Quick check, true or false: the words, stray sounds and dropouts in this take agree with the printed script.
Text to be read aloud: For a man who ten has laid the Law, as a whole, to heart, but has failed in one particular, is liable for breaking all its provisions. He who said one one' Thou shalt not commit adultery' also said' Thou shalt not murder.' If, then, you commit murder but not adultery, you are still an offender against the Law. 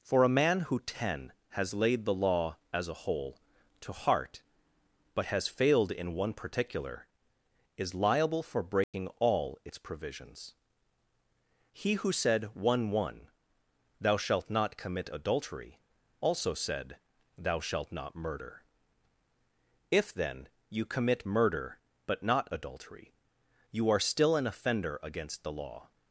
false